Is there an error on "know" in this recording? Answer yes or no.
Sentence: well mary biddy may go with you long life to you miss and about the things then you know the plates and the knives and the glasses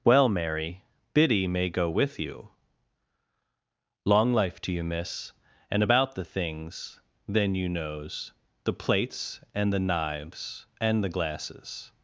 yes